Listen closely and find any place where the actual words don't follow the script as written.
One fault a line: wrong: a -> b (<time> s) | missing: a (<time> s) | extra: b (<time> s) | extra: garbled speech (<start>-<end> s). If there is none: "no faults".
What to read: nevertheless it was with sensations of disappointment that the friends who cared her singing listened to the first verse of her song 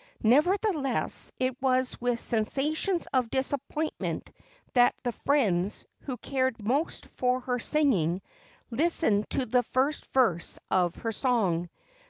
extra: most for (6.6 s)